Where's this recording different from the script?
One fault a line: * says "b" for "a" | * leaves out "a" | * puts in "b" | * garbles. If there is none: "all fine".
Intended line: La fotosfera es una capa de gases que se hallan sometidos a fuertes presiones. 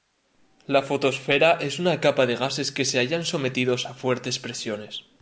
all fine